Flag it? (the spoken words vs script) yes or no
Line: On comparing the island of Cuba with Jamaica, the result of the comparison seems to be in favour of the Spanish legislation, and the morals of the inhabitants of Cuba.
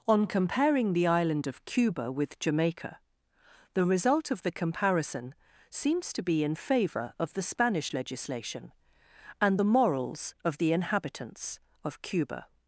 no